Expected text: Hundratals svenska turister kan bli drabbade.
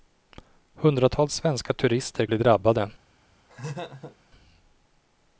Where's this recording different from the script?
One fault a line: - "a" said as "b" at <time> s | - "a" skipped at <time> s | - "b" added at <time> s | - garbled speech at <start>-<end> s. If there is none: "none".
- "kan" skipped at 2.3 s